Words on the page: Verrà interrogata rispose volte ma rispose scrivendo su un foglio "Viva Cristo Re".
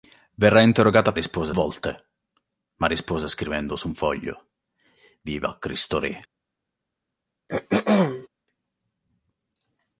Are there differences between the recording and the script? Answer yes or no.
no